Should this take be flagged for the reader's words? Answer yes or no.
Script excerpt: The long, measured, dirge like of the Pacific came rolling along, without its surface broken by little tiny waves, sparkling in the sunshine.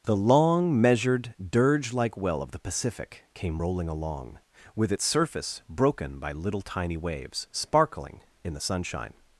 yes